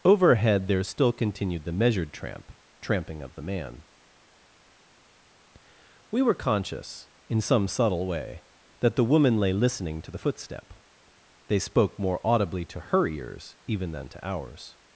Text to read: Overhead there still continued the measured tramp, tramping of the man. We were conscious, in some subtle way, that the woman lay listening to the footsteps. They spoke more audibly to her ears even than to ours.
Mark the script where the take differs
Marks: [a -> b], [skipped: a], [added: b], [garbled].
Overhead there still continued the measured tramp, tramping of the man. We were conscious, in some subtle way, that the woman lay listening to the [footsteps. -> footstep] They spoke more audibly to her ears even than to ours.